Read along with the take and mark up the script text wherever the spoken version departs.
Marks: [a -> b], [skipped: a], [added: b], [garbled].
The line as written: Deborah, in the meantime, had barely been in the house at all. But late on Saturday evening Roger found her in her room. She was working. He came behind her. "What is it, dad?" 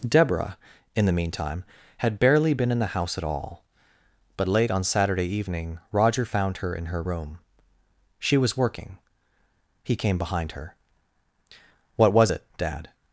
Deborah, in the meantime, had barely been in the house at all. But late on Saturday evening Roger found her in her room. She was working. He came behind her. "What [is -> was] it, dad?"